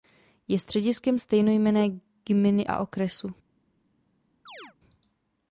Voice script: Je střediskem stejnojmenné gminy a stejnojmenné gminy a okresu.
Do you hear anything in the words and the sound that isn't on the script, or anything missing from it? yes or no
yes